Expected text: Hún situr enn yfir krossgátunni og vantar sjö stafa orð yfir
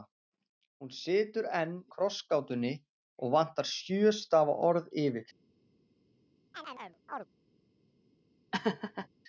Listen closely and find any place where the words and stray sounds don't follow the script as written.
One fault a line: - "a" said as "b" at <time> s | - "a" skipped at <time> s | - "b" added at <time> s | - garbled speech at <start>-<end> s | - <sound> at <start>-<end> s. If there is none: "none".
- "yfir" skipped at 1.8 s
- chirp at 6.5-7.3 s
- laugh at 8.5-9.1 s